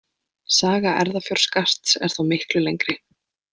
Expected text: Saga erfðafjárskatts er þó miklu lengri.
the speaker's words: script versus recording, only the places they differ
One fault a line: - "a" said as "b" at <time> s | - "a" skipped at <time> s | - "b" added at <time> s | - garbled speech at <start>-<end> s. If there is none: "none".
none